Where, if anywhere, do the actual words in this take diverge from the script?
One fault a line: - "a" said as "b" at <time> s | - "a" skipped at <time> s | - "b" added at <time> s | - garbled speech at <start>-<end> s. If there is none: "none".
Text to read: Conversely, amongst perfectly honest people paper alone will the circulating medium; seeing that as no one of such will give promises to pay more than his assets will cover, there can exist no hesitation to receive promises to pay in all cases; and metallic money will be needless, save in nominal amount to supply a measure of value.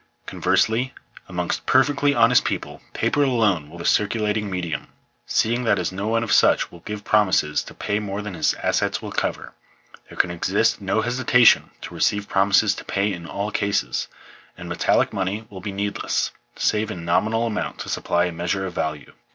none